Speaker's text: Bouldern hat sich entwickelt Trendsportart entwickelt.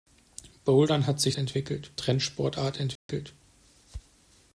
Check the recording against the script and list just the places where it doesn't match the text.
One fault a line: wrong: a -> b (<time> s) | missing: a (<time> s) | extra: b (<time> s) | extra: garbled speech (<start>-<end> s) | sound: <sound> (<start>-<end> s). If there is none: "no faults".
sound: dropout (3.0-3.1 s)